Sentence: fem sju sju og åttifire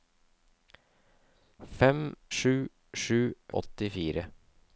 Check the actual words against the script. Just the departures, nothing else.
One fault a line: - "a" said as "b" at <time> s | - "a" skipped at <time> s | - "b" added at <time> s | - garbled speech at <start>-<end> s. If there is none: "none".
none